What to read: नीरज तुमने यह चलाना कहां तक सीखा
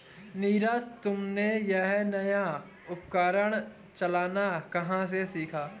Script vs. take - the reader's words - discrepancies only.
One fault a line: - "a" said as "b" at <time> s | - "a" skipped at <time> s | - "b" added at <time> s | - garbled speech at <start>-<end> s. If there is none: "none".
- "नया उपकरण" added at 2.0 s
- "तक" said as "से" at 5.1 s